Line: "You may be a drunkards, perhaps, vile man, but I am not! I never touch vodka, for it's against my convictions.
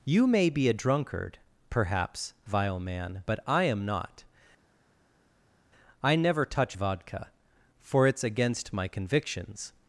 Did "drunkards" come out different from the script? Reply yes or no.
yes